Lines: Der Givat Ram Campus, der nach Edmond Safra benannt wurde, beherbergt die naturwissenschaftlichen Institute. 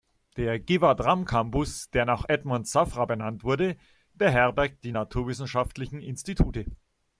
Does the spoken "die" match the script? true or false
true